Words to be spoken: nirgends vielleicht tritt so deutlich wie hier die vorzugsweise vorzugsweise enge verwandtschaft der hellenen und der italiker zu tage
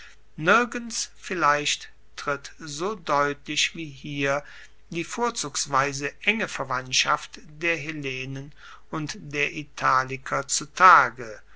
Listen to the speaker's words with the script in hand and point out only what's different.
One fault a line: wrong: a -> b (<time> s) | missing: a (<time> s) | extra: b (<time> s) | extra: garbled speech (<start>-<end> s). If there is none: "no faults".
missing: vorzugsweise (6.1 s)